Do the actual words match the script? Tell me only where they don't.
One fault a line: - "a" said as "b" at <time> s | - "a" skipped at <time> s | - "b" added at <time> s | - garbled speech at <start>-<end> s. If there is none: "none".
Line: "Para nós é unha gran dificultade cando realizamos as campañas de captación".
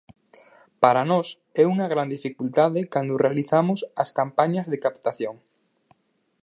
none